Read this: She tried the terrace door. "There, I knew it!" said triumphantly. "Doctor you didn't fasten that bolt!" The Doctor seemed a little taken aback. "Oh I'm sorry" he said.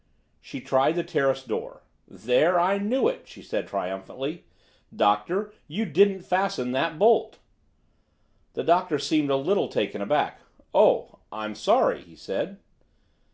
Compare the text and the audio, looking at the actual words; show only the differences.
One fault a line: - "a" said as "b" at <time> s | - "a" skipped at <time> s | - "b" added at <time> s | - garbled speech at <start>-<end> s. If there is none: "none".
- "she" added at 3.3 s